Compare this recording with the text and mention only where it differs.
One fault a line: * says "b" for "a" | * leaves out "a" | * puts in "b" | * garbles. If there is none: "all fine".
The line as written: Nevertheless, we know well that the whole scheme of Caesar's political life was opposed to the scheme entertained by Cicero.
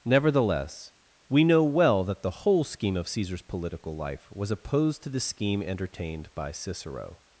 all fine